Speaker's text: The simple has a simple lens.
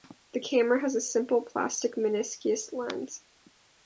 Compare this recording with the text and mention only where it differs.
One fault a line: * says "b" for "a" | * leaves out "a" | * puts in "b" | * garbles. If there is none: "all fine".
* says "camera" for "simple"
* puts in "plastic meniscus"